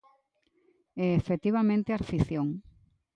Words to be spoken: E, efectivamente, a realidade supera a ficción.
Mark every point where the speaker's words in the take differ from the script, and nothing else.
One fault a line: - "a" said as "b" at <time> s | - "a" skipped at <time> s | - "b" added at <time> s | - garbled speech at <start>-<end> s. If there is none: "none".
- "realidade supera" skipped at 2.0 s